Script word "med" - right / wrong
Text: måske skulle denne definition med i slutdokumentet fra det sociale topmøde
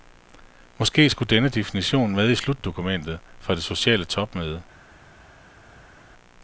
right